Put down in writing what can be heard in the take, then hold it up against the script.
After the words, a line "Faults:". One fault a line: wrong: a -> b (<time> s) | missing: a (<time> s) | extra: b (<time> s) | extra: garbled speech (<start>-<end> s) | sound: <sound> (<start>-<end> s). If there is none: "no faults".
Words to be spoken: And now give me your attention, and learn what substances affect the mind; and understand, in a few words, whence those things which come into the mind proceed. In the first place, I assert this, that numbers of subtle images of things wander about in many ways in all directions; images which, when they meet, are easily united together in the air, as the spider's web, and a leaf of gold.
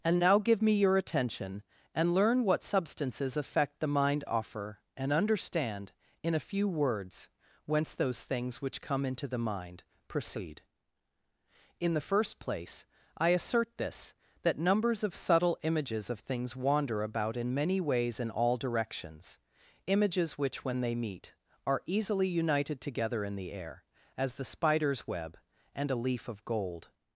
And now give me your attention, and learn what substances affect the mind; offer and understand, in a few words, whence those things which come into the mind proceed. In the first place, I assert this, that numbers of subtle images of things wander about in many ways in all directions; images which, when they meet, are easily united together in the air, as the spider's web, and a leaf of gold.
Faults:
extra: offer (4.2 s)